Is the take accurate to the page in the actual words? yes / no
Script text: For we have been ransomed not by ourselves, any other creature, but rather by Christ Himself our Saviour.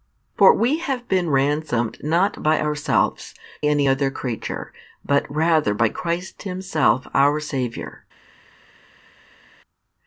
yes